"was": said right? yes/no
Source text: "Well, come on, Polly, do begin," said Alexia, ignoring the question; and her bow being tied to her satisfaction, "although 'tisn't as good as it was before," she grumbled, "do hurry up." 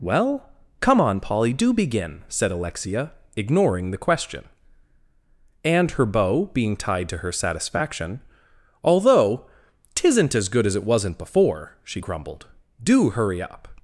no